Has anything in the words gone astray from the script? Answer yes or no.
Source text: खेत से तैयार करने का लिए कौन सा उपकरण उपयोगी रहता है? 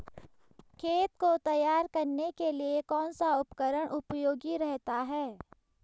yes